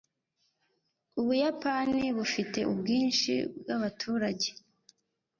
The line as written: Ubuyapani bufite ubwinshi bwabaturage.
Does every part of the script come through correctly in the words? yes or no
yes